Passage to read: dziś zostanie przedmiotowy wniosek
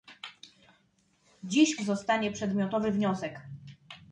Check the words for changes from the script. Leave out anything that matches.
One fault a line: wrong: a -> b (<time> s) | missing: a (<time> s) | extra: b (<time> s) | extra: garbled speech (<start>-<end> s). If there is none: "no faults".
no faults